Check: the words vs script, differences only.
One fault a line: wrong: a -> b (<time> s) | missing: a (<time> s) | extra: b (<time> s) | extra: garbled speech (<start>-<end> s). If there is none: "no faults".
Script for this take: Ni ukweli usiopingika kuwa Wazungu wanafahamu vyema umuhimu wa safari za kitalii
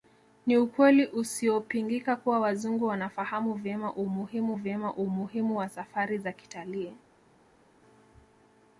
extra: vyema umuhimu (4.5 s)